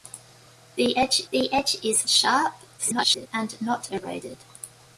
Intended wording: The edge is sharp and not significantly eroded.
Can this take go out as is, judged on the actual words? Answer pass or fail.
fail